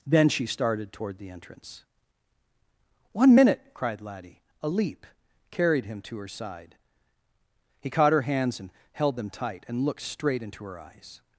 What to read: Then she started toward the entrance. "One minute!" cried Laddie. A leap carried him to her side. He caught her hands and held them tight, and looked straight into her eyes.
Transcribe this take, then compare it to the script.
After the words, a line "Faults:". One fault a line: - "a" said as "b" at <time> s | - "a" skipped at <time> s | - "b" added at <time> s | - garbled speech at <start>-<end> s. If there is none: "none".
Then she started toward the entrance. "One minute!" cried Laddie. A leap carried him to her side. He caught her hands and held them tight, and looked straight into her eyes.
Faults:
none